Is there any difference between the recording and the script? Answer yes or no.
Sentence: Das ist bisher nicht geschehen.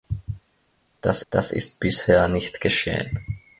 yes